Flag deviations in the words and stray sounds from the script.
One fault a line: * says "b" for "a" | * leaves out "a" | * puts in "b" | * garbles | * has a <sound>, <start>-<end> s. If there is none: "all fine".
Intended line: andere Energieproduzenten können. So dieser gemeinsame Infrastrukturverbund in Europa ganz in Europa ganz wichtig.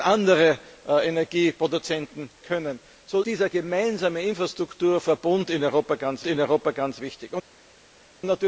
all fine